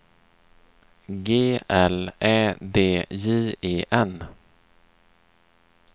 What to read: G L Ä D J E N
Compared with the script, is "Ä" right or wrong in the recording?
right